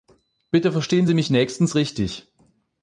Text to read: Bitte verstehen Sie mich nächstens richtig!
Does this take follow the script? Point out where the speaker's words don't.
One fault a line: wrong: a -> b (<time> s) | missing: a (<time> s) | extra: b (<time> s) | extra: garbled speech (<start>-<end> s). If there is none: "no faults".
no faults